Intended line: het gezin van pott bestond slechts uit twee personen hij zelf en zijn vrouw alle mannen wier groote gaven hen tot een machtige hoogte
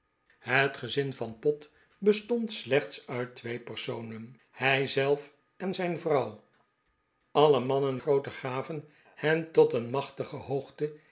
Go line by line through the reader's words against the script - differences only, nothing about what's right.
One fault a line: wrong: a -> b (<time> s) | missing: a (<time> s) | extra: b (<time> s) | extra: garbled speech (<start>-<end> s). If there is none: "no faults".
missing: wier (8.0 s)